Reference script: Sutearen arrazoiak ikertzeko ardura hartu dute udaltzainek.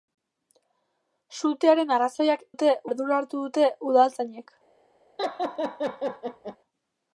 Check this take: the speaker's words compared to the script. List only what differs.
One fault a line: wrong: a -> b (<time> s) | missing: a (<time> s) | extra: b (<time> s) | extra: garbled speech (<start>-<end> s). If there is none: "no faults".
wrong: ikertzeko -> dute (2.5 s)